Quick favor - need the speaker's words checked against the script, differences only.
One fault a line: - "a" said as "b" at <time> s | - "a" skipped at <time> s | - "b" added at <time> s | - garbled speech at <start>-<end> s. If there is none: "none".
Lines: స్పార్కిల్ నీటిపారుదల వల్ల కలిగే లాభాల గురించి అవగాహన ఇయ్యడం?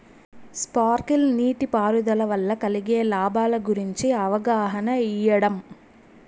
none